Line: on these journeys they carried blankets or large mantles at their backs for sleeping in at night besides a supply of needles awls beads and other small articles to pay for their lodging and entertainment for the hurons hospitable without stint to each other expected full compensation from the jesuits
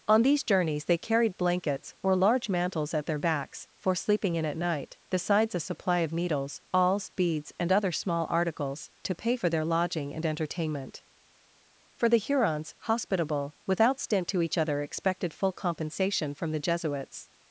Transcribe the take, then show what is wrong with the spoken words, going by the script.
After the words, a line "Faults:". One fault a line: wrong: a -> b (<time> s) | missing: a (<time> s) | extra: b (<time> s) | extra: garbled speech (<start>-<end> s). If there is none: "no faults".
on these journeys they carried blankets or large mantles at their backs for sleeping in at night besides a supply of needles awls beads and other small articles to pay for their lodging and entertainment for the hurons hospitable without stint to each other expected full compensation from the jesuits
Faults:
no faults